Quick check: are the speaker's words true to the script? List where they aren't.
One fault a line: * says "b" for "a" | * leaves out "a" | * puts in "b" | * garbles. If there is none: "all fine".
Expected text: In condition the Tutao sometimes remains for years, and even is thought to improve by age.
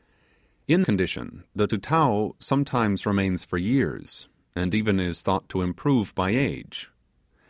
all fine